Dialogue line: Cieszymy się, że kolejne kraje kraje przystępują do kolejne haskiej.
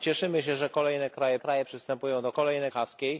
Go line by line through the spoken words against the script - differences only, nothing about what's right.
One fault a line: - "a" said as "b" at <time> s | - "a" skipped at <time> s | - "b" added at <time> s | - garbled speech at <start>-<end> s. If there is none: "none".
none